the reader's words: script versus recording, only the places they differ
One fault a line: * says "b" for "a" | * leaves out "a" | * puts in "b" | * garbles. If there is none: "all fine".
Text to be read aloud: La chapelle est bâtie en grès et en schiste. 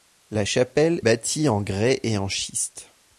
* leaves out "est"